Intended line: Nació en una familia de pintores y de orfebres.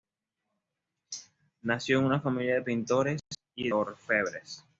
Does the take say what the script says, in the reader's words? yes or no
no